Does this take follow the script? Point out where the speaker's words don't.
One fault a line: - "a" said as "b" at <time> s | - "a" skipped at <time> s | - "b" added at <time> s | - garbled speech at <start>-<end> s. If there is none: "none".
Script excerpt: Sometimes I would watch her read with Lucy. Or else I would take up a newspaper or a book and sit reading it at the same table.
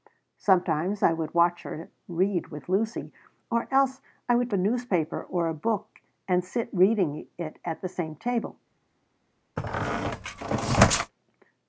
- "take up" skipped at 4.5 s